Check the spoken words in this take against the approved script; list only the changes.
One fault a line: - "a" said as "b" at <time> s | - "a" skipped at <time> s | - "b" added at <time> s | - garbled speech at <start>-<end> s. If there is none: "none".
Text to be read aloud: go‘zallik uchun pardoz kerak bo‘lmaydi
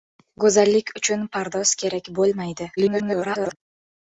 - garbled speech at 2.8-3.6 s